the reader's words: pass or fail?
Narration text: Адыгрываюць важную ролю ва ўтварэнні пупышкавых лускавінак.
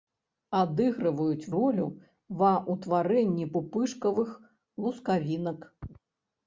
fail